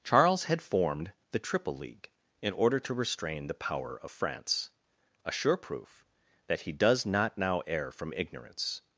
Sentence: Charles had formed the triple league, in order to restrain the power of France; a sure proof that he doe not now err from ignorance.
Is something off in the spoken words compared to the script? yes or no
yes